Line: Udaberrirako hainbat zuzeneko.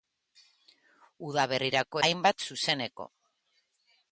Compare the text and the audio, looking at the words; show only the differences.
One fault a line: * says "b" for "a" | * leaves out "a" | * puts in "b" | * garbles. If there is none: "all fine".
all fine